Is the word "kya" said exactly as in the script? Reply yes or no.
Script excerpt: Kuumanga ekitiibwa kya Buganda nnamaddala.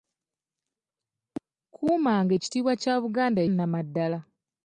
yes